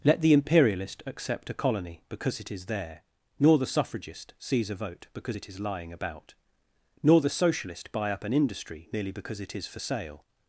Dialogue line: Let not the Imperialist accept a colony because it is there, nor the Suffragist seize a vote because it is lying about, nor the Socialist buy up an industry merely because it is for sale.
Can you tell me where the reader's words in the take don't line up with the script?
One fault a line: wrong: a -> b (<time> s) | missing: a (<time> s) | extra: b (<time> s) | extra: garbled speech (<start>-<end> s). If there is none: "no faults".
missing: not (0.2 s)